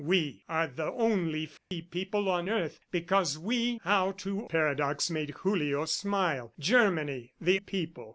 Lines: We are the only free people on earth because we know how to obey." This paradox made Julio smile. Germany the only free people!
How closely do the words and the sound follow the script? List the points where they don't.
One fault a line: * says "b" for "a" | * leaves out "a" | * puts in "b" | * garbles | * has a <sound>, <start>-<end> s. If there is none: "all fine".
* has a dropout, 1.6-1.7 s
* leaves out "know"
* leaves out "obey This"
* leaves out "only free"